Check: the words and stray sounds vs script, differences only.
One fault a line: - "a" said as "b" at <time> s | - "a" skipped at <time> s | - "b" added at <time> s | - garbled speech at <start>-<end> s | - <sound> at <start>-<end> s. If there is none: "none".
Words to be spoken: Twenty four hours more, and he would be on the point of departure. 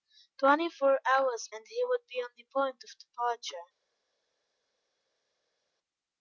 - "more" skipped at 1.5 s